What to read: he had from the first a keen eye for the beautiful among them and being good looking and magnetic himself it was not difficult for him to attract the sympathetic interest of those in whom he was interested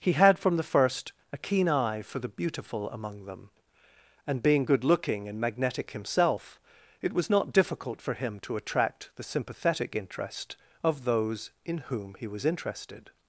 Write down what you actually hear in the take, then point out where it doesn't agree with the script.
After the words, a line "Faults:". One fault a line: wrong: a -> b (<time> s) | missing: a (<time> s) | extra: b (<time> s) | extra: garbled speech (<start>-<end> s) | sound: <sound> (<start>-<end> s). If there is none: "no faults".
he had from the first a keen eye for the beautiful among them and being good looking and magnetic himself it was not difficult for him to attract the sympathetic interest of those in whom he was interested
Faults:
no faults